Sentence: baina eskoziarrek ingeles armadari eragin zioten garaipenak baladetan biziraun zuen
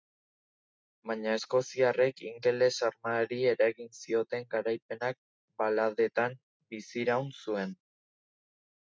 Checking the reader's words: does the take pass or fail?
pass